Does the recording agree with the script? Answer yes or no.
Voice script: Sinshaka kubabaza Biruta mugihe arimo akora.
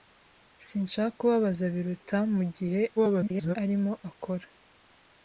no